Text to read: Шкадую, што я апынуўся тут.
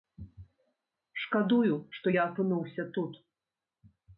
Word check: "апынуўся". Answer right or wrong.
right